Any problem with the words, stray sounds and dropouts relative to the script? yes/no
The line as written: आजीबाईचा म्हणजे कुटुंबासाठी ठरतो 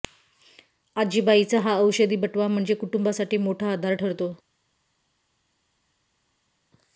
yes